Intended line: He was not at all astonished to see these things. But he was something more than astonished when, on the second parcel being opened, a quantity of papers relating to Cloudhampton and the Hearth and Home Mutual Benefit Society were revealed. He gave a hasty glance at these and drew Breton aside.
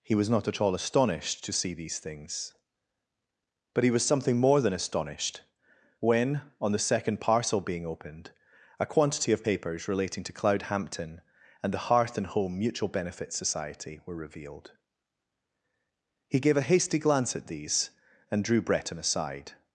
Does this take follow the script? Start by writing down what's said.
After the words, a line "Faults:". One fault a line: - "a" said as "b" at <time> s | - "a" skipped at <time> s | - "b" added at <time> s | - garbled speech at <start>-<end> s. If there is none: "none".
He was not at all astonished to see these things. But he was something more than astonished when, on the second parcel being opened, a quantity of papers relating to Cloudhampton and the Hearth and Home Mutual Benefit Society were revealed. He gave a hasty glance at these and drew Breton aside.
Faults:
none